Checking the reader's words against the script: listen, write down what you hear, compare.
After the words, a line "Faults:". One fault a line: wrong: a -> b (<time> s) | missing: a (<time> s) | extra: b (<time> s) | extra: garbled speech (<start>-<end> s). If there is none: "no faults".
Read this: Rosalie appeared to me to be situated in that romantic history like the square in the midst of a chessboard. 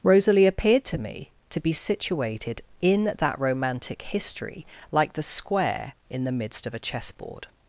Rosalie appeared to me to be situated in that romantic history like the square in the midst of a chessboard.
Faults:
no faults